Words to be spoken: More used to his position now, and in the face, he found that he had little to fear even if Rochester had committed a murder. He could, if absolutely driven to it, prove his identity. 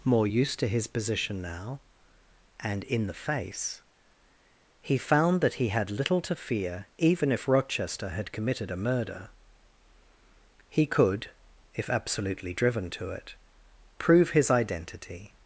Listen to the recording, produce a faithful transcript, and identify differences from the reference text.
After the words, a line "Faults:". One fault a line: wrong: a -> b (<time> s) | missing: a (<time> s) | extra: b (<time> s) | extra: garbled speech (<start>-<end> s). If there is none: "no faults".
More used to his position now, and in the face, he found that he had little to fear even if Rochester had committed a murder. He could, if absolutely driven to it, prove his identity.
Faults:
no faults